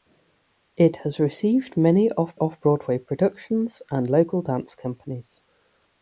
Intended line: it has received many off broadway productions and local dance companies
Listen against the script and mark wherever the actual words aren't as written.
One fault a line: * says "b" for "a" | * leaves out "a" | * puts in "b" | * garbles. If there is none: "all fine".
* puts in "off"